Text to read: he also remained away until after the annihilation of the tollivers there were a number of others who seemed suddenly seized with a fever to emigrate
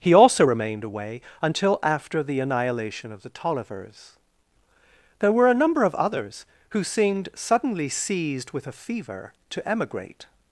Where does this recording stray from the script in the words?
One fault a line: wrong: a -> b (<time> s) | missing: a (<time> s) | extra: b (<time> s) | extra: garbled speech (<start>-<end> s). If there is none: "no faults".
no faults